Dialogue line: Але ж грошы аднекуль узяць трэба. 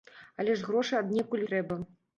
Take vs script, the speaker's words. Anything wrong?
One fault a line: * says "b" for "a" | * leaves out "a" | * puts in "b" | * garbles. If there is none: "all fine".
* leaves out "узяць"